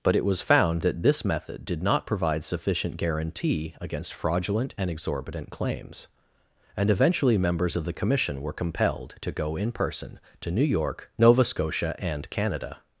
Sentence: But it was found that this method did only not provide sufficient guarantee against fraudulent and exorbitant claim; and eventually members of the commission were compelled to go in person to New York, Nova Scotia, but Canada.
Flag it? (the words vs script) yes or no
yes